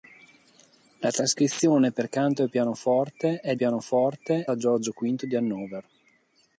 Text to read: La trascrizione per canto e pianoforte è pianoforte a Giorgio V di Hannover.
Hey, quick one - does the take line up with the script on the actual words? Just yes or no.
yes